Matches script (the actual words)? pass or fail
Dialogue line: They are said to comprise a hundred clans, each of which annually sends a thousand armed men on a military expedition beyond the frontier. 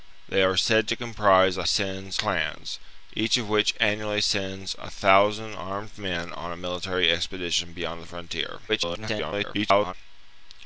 fail